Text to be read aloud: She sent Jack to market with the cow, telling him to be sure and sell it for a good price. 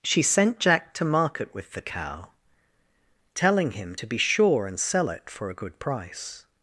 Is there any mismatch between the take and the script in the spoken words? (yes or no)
no